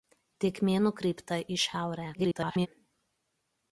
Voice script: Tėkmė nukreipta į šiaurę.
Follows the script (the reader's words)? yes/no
no